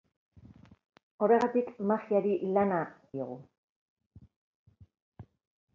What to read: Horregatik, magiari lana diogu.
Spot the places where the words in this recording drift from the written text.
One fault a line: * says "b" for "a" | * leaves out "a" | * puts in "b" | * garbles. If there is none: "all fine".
all fine